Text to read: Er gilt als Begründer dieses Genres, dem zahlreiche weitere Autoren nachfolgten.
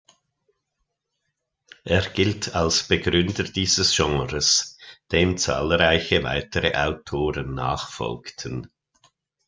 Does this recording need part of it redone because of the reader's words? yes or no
no